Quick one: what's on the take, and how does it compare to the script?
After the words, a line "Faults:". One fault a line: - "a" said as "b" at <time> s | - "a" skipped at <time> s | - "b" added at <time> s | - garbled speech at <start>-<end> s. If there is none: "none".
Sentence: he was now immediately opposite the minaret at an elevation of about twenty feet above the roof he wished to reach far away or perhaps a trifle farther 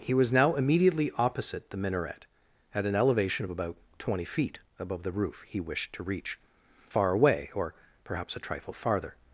he was now immediately opposite the minaret at an elevation of about twenty feet above the roof he wished to reach far away or perhaps a trifle farther
Faults:
none